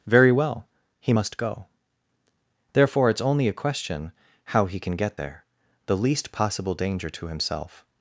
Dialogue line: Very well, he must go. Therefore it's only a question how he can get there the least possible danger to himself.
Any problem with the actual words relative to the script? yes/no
no